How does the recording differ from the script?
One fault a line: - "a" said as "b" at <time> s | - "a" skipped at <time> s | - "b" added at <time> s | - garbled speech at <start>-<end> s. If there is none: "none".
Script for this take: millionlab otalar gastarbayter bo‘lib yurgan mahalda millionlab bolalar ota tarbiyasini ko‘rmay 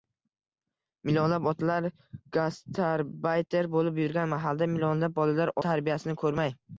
- "ota" skipped at 5.5 s